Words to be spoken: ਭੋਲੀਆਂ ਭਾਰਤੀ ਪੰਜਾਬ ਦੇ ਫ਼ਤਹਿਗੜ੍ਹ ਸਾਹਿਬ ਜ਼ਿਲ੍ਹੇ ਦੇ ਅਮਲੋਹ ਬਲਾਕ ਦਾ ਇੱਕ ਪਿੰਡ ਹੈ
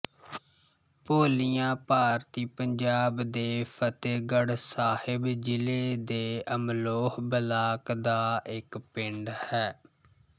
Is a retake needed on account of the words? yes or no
no